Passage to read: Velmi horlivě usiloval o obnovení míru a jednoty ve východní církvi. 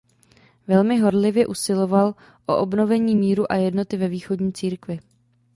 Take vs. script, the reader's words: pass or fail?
pass